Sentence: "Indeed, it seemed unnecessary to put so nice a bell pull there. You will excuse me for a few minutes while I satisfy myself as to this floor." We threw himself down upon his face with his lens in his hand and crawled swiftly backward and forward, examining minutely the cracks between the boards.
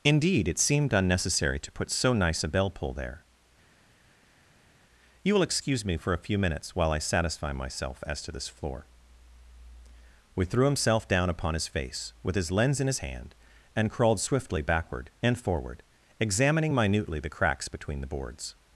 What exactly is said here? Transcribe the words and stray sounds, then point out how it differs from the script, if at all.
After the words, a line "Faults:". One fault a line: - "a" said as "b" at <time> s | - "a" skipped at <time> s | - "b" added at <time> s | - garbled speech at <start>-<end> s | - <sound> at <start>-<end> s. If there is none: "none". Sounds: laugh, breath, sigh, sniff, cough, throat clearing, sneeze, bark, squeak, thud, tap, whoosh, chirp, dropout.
"Indeed, it seemed unnecessary to put so nice a bell pull there. You will excuse me for a few minutes while I satisfy myself as to this floor." We threw himself down upon his face with his lens in his hand and crawled swiftly backward and forward, examining minutely the cracks between the boards.
Faults:
none